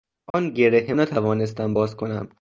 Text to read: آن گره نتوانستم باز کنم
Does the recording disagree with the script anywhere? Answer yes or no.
no